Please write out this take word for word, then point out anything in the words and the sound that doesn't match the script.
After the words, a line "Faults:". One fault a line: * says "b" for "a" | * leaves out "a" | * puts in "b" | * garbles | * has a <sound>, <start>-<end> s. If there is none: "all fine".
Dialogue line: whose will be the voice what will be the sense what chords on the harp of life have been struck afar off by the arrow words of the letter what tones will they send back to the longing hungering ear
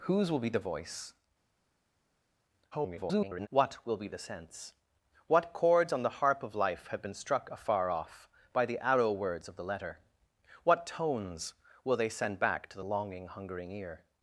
whose will be the voice [garbled] what will be the sense what chords on the harp of life have been struck afar off by the arrow words of the letter what tones will they send back to the longing hungering ear
Faults:
* garbles